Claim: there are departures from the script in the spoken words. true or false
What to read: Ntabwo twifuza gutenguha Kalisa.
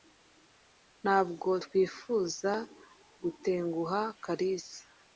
false